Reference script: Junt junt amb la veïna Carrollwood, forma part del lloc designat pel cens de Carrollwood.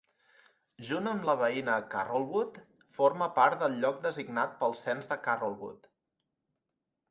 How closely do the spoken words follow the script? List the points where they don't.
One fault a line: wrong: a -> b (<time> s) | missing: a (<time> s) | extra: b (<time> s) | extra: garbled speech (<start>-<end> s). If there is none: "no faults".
missing: junt (1.1 s)